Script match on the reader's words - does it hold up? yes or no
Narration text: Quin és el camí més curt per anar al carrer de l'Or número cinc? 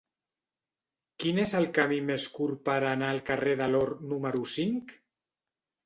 yes